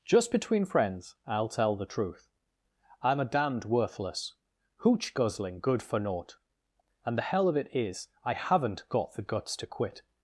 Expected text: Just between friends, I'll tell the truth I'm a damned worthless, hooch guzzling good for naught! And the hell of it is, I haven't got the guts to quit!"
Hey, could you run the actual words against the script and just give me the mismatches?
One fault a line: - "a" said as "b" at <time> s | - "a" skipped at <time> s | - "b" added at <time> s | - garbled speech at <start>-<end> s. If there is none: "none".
none